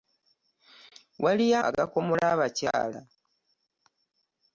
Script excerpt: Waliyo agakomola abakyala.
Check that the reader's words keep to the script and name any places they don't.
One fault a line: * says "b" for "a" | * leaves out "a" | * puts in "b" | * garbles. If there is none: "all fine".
all fine